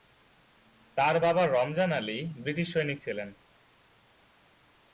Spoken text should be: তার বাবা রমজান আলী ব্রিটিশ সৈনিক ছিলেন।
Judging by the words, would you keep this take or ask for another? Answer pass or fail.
pass